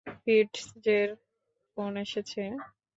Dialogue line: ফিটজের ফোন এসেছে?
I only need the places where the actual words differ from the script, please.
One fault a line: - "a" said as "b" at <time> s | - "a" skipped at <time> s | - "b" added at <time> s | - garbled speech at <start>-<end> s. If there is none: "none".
none